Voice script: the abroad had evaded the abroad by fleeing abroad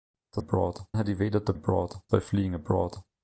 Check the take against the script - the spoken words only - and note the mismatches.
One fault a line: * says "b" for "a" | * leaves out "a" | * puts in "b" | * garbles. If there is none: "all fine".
all fine